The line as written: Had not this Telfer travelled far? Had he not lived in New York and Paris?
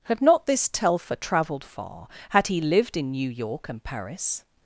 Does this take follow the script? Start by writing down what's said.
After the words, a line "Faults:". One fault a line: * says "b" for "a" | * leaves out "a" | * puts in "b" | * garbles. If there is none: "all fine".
Had not this Telfer travelled far? Had he lived in New York and Paris?
Faults:
* leaves out "not"